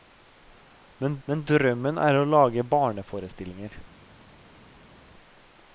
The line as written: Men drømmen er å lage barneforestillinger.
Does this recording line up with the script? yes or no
no